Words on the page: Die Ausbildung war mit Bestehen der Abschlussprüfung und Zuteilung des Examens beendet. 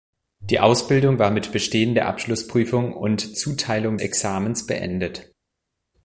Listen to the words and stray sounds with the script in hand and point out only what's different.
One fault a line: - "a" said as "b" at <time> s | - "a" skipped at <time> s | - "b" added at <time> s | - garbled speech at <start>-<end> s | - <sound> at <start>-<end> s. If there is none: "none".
- "des" skipped at 4.0 s